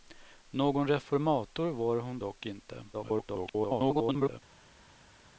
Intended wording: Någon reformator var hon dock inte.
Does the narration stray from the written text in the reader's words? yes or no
yes